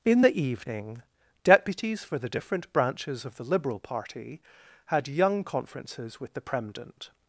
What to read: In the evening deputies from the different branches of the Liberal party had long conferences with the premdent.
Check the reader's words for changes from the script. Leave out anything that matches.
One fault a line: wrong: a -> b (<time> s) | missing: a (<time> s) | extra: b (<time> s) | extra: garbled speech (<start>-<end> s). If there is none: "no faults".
wrong: from -> for (2.0 s)
wrong: long -> young (5.1 s)